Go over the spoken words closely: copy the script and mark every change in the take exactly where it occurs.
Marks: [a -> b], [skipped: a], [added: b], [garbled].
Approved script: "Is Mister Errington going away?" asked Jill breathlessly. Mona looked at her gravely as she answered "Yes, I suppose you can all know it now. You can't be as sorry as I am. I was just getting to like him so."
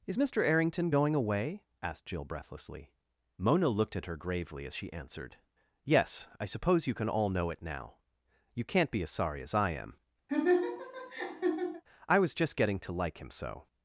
"Is Mister Errington going away?" asked Jill breathlessly. Mona looked at her gravely as she answered "Yes, I suppose you can all know it now. You can't be as sorry as I am. I was just getting to like him so."